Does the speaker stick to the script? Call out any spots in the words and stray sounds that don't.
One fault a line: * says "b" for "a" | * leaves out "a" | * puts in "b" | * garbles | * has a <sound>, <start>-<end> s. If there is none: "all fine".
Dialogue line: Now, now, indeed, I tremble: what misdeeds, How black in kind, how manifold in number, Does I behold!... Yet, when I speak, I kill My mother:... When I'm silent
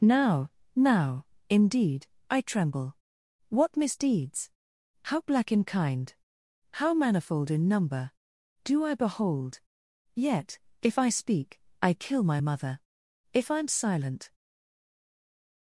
* says "Do" for "Does"
* says "if" for "when"
* says "If" for "When"